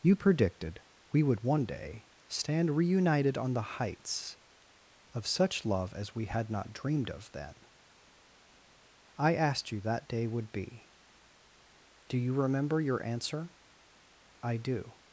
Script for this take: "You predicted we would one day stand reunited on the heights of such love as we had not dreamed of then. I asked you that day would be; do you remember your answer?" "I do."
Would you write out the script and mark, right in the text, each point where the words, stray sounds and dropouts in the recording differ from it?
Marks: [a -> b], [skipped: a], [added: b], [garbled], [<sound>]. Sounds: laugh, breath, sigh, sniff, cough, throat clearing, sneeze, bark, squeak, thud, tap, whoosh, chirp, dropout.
"You predicted we would one day stand reunited on the heights of such love as we had not dreamed of then. I asked you that day would be; do you remember your answer?" "I do."